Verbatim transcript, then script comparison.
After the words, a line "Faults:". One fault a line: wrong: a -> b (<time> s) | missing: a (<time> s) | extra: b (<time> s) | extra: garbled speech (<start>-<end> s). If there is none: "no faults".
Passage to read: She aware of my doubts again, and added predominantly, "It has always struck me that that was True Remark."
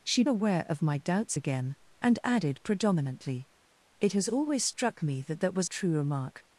She aware of my doubts again, and added predominantly, "It has always struck me that that was True Remark."
Faults:
no faults